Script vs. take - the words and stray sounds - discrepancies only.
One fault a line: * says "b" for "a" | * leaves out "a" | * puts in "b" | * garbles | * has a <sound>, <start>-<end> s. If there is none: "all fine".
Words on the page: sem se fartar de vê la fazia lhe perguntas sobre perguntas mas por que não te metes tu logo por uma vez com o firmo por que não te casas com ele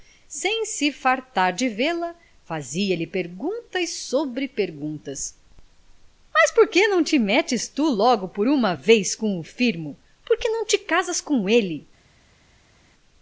all fine